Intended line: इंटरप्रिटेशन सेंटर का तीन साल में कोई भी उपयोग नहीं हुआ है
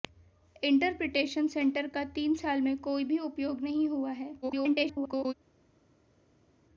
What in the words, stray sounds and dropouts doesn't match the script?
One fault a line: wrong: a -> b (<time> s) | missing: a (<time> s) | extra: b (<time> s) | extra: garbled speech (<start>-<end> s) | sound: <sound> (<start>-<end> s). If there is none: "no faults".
extra: garbled speech (4.4-5.3 s)